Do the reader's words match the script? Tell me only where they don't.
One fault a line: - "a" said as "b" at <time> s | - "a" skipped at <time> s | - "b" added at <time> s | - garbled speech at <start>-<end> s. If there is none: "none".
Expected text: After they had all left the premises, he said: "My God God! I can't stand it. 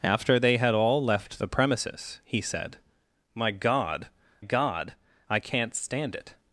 none